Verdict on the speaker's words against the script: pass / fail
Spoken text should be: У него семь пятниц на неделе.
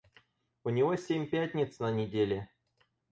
pass